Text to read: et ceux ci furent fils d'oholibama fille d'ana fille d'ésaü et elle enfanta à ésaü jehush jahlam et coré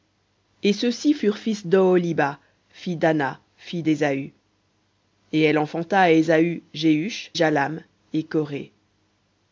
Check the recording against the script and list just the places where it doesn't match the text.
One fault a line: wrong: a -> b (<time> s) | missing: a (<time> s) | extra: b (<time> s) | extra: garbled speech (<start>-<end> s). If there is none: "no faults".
no faults